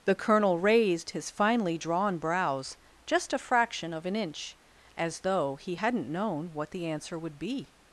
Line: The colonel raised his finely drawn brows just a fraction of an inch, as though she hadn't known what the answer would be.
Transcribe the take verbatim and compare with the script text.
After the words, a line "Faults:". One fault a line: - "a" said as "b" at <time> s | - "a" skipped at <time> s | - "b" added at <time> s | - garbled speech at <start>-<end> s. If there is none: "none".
The colonel raised his finely drawn brows just a fraction of an inch, as though he hadn't known what the answer would be.
Faults:
- "she" said as "he" at 5.6 s